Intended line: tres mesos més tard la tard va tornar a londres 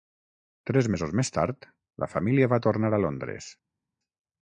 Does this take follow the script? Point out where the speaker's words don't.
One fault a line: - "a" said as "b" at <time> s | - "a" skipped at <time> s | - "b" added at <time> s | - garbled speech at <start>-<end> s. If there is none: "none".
- "tard" said as "família" at 2.1 s